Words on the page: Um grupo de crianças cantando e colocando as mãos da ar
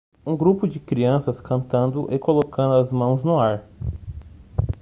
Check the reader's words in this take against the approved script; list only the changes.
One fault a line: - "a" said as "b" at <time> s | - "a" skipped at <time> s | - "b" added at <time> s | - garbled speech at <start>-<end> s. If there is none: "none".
- "da" said as "no" at 3.2 s